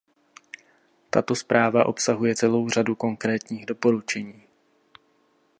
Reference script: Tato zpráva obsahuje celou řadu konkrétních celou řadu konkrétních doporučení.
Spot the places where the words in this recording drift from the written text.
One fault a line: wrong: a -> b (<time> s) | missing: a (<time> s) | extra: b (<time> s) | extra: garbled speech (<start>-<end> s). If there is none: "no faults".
missing: celou řadu konkrétních (3.7 s)